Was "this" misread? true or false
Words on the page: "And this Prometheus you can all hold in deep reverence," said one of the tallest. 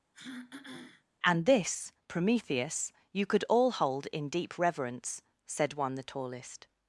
false